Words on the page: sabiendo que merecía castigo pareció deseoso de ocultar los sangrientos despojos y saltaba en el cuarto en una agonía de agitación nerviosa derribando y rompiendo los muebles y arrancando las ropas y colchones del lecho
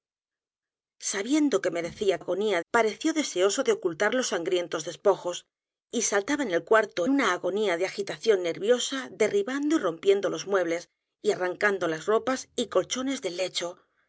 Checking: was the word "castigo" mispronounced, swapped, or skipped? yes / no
yes